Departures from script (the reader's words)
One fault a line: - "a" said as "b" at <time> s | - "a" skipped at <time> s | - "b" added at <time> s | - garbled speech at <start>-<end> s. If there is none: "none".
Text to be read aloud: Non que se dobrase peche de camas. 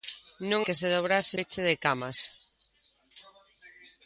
none